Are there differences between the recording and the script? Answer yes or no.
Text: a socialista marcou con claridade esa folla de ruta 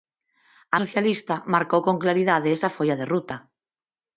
no